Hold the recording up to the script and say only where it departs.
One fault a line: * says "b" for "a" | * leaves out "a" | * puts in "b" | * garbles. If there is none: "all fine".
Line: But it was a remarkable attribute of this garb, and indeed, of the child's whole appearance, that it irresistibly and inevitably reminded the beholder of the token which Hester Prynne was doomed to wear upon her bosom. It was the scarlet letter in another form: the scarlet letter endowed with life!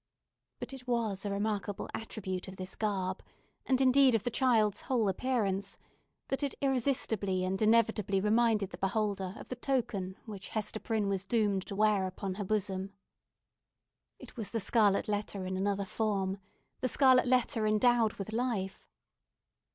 all fine